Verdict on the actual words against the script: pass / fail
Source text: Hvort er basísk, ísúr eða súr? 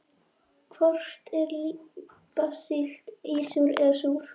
pass